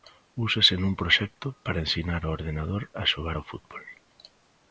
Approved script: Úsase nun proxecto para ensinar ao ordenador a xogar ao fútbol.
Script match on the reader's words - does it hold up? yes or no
yes